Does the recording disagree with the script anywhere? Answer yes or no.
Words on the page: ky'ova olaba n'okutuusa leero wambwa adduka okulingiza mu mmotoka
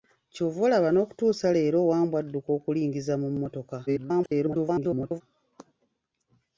yes